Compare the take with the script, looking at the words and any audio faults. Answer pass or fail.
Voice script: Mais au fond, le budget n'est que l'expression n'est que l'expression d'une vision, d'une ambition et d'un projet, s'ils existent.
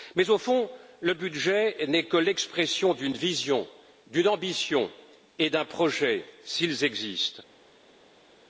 fail